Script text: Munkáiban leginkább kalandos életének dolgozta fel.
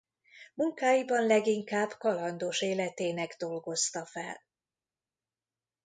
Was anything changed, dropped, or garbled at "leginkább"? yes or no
no